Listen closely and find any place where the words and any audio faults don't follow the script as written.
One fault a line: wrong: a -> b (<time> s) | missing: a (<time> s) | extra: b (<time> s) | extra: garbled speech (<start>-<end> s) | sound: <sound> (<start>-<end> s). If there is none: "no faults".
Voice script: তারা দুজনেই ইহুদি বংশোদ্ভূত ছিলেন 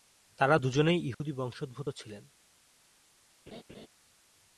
sound: dropout (1.1-1.2 s)
sound: laugh (3.5-3.9 s)